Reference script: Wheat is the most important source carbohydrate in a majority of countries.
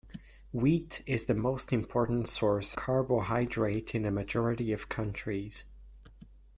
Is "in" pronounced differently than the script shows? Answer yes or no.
no